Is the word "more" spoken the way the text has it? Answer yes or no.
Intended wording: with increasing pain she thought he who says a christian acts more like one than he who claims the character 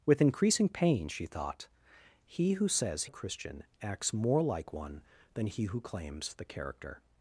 yes